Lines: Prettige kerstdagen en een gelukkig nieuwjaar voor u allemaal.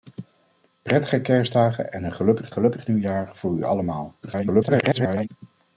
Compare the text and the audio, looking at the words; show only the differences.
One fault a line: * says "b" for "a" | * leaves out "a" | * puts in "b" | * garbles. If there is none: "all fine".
* puts in "gelukkig"
* garbles